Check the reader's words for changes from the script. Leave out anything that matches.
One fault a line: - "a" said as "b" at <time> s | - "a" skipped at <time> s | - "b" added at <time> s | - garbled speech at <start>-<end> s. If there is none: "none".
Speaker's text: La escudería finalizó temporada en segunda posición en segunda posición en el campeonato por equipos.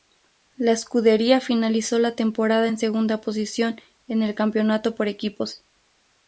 - "la" added at 2.0 s
- "segunda posición en" skipped at 4.2 s